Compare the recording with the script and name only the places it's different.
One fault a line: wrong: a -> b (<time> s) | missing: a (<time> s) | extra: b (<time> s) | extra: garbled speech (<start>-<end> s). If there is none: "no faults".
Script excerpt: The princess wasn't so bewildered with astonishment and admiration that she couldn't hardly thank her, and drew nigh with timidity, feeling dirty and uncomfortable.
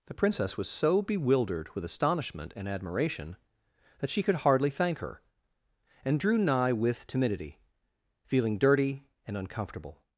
wrong: wasn't -> was (0.6 s)
wrong: couldn't -> could (4.2 s)